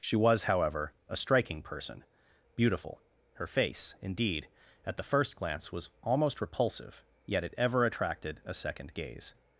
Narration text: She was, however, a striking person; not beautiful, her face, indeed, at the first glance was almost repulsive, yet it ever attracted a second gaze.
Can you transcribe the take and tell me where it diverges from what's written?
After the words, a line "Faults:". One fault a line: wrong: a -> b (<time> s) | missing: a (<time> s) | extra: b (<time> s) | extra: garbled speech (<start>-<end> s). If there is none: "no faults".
She was, however, a striking person; beautiful, her face, indeed, at the first glance was almost repulsive, yet it ever attracted a second gaze.
Faults:
missing: not (2.0 s)